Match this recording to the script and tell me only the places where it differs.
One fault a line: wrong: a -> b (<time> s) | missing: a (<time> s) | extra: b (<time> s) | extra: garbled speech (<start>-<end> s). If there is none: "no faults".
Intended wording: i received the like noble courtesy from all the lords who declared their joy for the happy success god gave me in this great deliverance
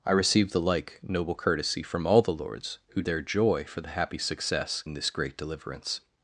missing: declared (3.0 s)
missing: god gave me (4.8 s)